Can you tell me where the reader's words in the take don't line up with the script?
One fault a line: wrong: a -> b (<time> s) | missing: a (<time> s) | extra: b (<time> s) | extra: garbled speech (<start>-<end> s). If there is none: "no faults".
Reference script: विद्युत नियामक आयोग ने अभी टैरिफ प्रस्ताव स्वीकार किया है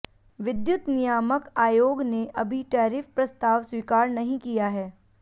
extra: नहीं (4.1 s)